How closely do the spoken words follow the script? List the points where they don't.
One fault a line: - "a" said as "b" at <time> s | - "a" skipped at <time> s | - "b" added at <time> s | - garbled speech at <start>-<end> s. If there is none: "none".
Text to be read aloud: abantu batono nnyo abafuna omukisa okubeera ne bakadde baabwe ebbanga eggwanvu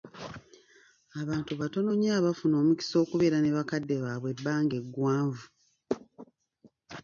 none